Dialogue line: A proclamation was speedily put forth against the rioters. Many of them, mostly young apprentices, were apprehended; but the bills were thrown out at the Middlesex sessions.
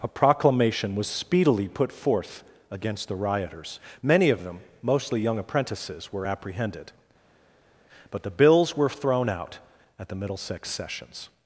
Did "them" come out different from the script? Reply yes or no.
no